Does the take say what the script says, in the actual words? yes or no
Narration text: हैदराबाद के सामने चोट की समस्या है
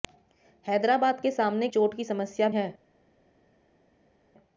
yes